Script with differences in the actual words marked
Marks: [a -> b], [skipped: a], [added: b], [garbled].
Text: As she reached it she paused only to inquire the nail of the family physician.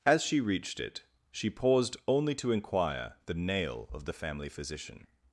As she reached it she paused only to inquire the nail of the family physician.